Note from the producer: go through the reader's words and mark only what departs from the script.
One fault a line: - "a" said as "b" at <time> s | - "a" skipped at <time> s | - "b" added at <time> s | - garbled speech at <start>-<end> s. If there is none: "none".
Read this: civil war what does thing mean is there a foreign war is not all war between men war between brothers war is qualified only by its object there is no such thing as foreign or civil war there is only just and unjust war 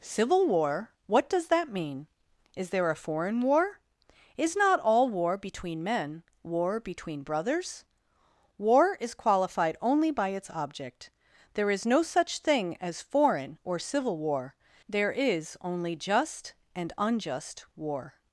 - "thing" said as "that" at 1.5 s